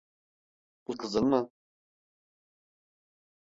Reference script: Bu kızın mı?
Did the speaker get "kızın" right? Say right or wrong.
right